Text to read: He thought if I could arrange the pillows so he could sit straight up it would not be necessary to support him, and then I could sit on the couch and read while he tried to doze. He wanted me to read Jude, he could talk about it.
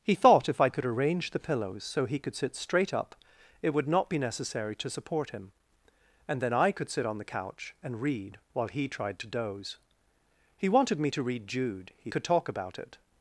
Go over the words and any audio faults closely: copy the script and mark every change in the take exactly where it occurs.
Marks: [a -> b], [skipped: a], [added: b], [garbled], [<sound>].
He thought if I could arrange the pillows so he could sit straight up it would not be necessary to support him, and then I could sit on the couch and read while he tried to doze. He wanted me to read Jude, he could talk about it.